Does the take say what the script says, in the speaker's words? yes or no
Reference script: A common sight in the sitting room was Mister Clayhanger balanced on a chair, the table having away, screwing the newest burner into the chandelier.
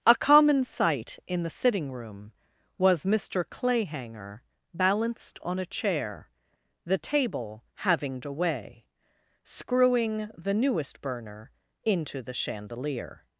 yes